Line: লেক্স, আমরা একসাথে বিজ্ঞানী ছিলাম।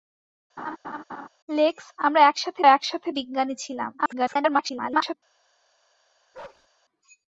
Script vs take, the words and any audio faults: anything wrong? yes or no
yes